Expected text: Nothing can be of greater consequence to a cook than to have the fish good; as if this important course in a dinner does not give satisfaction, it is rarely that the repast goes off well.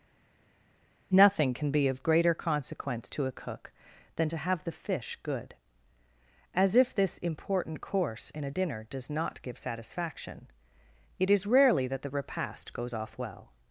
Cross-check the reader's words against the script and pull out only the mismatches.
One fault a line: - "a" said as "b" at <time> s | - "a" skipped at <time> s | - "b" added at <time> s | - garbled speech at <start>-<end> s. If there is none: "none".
none